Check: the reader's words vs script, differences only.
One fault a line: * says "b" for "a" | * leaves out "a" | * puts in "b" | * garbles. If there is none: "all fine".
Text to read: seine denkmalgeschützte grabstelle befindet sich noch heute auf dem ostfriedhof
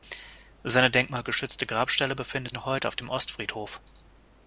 * leaves out "sich"